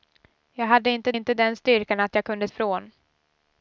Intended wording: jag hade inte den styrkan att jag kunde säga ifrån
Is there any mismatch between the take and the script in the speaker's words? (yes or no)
yes